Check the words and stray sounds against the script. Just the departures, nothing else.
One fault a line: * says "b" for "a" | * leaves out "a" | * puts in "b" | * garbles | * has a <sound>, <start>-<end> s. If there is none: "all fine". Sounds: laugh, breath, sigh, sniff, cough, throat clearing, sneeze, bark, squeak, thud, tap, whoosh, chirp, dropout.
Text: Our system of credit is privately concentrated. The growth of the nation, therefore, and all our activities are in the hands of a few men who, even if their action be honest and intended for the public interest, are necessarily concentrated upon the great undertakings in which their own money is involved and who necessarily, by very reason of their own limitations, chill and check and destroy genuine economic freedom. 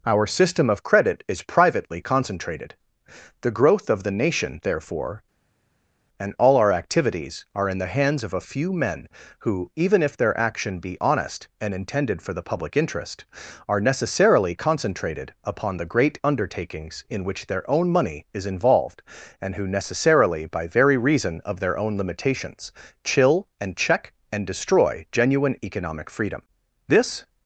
* puts in "This"